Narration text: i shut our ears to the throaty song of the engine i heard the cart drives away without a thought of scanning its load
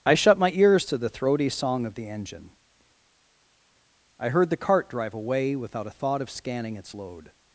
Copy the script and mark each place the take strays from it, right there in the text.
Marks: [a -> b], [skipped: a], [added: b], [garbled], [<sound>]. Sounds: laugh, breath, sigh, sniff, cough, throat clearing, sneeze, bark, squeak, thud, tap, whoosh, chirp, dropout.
i shut [our -> my] ears to the throaty song of the engine i heard the cart [drives -> drive] away without a thought of scanning its load